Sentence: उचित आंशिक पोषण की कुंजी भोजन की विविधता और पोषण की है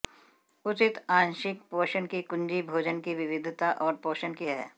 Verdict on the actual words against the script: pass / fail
pass